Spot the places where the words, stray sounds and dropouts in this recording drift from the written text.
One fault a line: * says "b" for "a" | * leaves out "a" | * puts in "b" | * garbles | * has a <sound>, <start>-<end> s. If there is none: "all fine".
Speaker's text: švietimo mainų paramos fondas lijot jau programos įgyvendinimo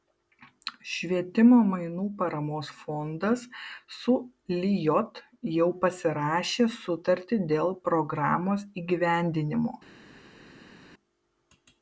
* puts in "su"
* puts in "pasirašė sutartį dėl"